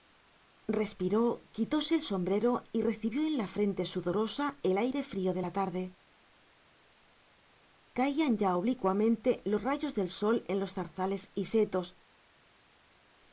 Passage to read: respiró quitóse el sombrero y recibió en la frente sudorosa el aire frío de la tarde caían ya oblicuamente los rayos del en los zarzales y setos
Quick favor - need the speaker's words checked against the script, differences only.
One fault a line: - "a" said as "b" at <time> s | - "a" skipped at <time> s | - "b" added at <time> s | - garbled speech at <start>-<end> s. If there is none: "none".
- "sol" added at 10.1 s